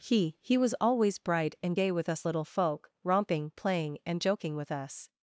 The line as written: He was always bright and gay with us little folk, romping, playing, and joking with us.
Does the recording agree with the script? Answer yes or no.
no